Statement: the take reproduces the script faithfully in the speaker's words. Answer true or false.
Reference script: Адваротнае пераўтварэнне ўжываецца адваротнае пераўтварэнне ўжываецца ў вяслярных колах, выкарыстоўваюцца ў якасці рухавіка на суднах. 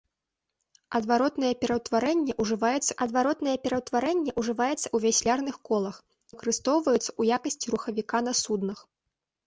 true